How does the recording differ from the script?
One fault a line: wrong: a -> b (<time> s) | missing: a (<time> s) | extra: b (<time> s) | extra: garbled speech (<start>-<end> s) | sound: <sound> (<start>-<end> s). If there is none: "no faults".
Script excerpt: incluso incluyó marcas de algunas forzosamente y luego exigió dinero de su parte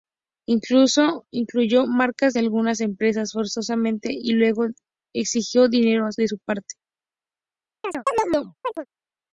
extra: empresas (2.8 s)
sound: chirp (7.8-8.9 s)